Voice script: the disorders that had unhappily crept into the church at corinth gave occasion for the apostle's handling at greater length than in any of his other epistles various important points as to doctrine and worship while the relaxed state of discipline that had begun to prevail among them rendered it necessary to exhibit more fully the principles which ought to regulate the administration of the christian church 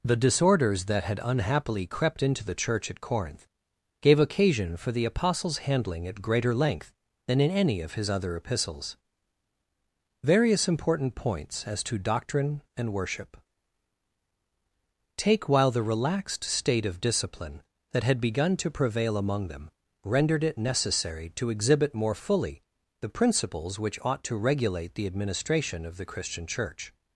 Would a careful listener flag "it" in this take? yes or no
no